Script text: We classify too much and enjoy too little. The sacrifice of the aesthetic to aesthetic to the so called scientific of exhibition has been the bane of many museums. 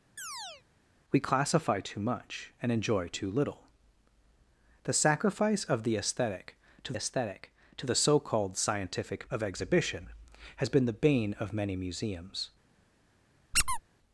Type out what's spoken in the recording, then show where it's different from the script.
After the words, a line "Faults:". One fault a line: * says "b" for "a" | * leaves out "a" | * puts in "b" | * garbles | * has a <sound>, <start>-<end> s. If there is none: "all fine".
We classify too much and enjoy too little. The sacrifice of the aesthetic to aesthetic to the so called scientific of exhibition has been the bane of many museums.
Faults:
* has a chirp, 0.2-0.6 s
* has a squeak, 13.5-13.8 s